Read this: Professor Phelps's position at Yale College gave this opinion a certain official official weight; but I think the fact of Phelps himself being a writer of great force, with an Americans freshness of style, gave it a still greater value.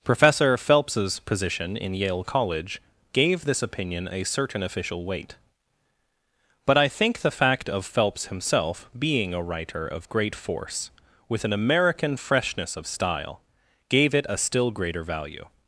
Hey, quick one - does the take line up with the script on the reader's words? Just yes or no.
no